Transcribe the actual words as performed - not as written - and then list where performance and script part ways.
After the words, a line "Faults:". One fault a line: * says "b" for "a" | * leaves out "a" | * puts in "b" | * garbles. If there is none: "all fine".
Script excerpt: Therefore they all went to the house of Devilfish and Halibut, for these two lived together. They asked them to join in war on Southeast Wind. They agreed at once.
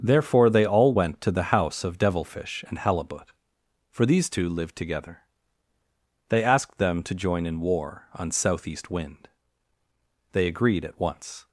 Therefore they all went to the house of Devilfish and Halibut, for these two lived together. They asked them to join in war on Southeast Wind. They agreed at once.
Faults:
all fine